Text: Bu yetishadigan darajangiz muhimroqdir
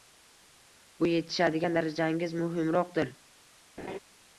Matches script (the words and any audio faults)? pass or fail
fail